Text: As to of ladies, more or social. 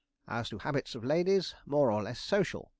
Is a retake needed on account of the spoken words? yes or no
yes